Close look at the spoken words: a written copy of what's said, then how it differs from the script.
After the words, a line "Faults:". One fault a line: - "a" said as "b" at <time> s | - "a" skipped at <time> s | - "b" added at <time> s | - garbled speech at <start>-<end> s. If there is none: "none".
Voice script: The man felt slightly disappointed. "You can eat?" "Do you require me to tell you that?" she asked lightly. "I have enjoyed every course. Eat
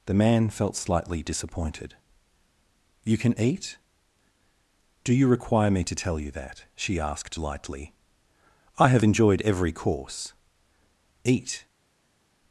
The man felt slightly disappointed. "You can eat?" "Do you require me to tell you that?" she asked lightly. "I have enjoyed every course. Eat
Faults:
none